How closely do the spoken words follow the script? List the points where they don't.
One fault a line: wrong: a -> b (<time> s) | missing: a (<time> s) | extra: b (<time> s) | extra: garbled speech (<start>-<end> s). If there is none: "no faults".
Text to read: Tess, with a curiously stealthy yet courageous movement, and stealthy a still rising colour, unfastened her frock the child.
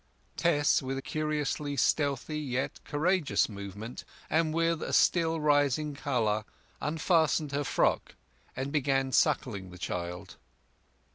wrong: stealthy -> with (4.5 s)
extra: and began suckling (8.6 s)